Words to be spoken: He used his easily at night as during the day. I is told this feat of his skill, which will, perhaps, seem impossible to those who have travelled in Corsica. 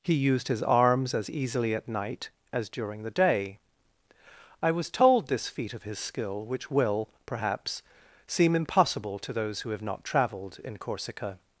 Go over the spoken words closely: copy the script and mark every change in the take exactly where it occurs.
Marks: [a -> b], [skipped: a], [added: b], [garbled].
He used his [added: arms as] easily at night as during the day. I [is -> was] told this feat of his skill, which will, perhaps, seem impossible to those who have [added: not] travelled in Corsica.